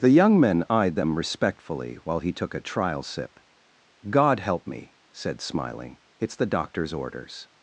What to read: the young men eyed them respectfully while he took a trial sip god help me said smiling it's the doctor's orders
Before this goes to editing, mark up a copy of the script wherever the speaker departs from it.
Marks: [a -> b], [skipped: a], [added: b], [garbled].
the young men eyed them respectfully while he took a trial sip god help me said smiling it's the doctor's orders